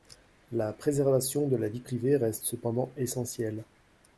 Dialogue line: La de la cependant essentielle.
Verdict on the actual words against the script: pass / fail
fail